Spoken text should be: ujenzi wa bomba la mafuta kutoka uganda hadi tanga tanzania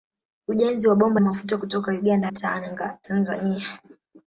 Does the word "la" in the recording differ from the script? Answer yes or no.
yes